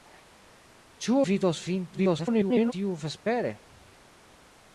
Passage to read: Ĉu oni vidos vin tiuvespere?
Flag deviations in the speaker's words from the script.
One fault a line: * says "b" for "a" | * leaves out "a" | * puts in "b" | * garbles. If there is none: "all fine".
* leaves out "oni"
* garbles